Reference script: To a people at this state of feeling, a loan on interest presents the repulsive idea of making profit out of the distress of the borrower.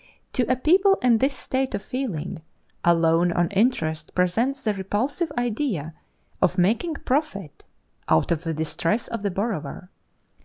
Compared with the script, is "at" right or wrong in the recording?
wrong